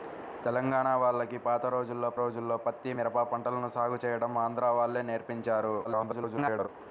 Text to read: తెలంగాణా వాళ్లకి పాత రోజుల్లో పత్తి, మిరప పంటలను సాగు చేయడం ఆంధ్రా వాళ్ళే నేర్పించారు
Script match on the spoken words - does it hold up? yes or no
no